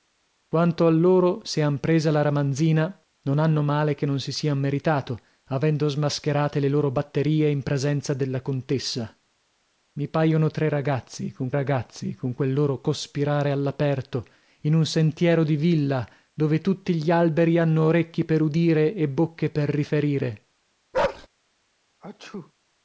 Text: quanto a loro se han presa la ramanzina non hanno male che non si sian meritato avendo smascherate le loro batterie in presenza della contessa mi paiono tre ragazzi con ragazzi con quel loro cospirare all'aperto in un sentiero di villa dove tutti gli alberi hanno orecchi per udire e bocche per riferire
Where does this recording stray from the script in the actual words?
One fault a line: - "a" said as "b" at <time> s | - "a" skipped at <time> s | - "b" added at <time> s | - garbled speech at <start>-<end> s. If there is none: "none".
none